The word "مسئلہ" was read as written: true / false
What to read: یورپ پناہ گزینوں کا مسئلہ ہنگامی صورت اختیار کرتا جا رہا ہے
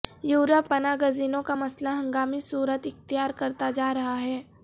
true